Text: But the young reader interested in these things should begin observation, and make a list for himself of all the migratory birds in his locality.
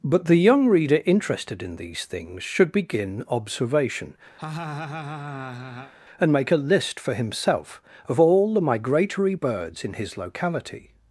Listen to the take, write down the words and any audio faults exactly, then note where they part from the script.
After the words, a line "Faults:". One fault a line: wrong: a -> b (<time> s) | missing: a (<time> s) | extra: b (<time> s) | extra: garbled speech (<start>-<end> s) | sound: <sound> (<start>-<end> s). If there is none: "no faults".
But the young reader interested in these things should begin observation, and make a list for himself of all the migratory birds in his locality.
Faults:
sound: laugh (4.4-5.9 s)